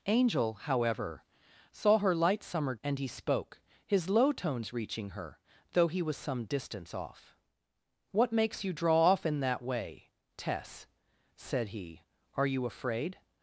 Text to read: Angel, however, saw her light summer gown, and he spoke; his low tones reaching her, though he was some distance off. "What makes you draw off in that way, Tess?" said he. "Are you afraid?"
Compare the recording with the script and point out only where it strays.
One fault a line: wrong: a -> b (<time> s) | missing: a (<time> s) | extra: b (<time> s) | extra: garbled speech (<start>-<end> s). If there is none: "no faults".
missing: gown (2.8 s)